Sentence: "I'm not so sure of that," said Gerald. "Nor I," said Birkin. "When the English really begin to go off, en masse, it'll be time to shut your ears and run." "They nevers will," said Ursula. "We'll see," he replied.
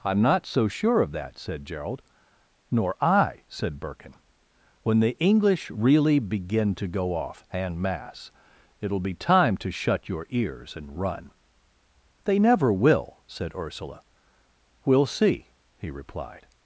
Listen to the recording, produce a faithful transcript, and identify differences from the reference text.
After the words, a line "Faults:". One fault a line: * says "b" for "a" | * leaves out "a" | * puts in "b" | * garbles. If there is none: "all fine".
"I'm not so sure of that," said Gerald. "Nor I," said Birkin. "When the English really begin to go off, en masse, it'll be time to shut your ears and run." "They never will," said Ursula. "We'll see," he replied.
Faults:
* says "never" for "nevers"